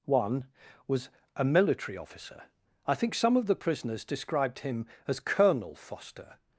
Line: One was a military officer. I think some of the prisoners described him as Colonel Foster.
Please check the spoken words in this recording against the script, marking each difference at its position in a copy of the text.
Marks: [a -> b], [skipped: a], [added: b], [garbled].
One was a military officer. I think some of the prisoners described him as Colonel Foster.